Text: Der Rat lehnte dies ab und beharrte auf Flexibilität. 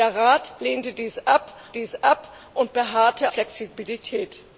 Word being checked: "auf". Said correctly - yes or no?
no